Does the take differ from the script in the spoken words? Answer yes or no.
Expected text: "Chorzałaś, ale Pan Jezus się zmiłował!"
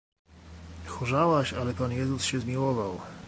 no